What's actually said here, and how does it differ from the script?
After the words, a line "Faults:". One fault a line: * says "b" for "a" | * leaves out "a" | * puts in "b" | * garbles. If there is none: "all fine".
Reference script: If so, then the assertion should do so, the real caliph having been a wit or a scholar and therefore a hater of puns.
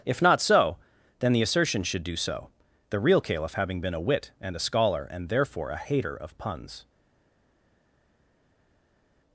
If not so, then the assertion should do so, the real caliph having been a wit and a scholar and therefore a hater of puns.
Faults:
* puts in "not"
* says "and" for "or"